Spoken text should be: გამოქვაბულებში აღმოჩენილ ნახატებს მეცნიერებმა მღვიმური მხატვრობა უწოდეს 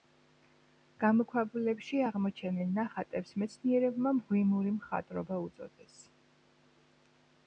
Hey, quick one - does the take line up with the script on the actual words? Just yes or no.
yes